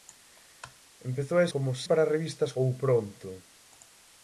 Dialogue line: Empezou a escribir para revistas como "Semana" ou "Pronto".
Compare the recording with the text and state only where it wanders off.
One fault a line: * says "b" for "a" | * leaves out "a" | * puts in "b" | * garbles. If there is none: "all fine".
* says "como" for "escribir"
* leaves out "como Semana"